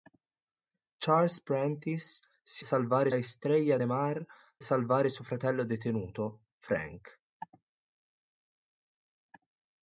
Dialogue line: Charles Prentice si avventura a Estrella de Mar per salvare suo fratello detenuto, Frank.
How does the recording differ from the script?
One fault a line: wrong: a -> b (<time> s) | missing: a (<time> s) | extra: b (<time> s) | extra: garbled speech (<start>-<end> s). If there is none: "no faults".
wrong: avventura -> salvare (2.6 s)
missing: per (4.2 s)